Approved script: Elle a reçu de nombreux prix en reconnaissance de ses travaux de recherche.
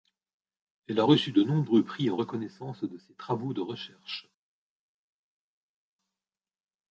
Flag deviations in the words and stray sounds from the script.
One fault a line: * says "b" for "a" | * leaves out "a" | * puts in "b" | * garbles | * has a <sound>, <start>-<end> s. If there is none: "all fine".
all fine